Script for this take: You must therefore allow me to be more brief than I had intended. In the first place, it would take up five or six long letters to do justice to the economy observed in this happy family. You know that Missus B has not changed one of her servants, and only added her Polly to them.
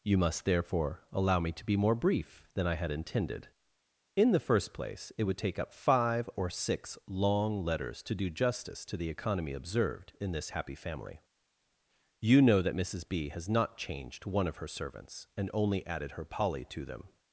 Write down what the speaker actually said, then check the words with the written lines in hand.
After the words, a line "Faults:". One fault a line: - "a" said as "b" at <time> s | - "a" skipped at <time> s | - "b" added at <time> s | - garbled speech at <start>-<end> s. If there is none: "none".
You must therefore allow me to be more brief than I had intended. In the first place, it would take up five or six long letters to do justice to the economy observed in this happy family. You know that Missus B has not changed one of her servants, and only added her Polly to them.
Faults:
none